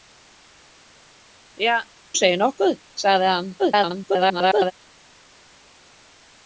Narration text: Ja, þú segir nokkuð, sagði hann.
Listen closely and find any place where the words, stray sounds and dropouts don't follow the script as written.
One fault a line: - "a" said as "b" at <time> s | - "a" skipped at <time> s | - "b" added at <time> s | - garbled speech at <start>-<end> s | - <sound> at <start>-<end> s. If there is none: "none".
- "þú" skipped at 1.8 s
- garbled speech at 3.6-4.7 s